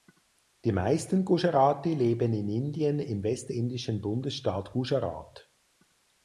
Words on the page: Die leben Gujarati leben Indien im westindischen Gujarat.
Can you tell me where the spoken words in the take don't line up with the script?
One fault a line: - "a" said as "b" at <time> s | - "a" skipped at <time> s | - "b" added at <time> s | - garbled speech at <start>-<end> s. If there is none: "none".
- "leben" said as "meisten" at 0.7 s
- "in" added at 2.3 s
- "Bundesstaat" added at 4.0 s